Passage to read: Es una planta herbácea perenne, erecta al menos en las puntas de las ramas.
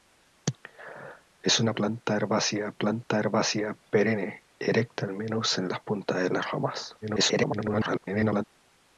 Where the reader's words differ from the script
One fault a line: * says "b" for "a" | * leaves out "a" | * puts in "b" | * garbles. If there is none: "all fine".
* puts in "planta herbácea"
* garbles